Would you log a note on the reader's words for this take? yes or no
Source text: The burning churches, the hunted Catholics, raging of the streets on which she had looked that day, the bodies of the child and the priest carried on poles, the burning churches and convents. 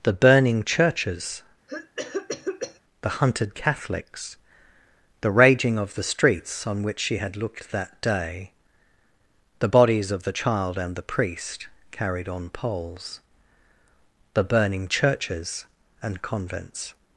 yes